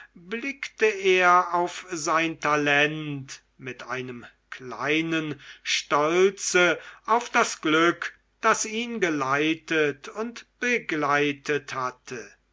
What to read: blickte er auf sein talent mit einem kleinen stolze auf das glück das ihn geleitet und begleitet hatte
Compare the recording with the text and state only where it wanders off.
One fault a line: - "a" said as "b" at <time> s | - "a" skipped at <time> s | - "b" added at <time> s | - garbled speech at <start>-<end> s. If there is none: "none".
none